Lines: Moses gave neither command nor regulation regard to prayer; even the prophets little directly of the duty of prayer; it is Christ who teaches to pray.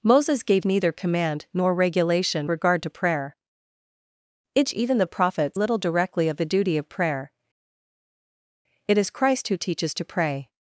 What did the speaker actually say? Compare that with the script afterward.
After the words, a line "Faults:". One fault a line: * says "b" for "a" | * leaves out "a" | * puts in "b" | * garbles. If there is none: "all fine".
Moses gave neither command nor regulation regard to prayer; even the prophets little directly of the duty of prayer; it is Christ who teaches to pray.
Faults:
all fine